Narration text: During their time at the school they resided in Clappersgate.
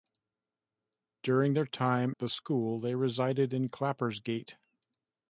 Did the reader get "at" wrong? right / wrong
wrong